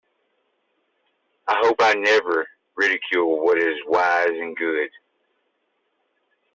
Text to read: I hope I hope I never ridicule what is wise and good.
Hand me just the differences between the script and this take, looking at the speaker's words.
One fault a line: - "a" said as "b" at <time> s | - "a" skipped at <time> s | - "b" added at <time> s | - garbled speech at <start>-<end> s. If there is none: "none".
- "hope I" skipped at 1.9 s